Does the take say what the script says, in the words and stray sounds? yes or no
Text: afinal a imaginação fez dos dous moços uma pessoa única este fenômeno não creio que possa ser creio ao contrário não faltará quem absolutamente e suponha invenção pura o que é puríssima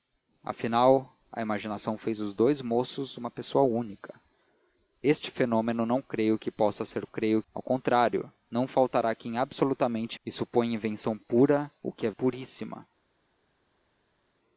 yes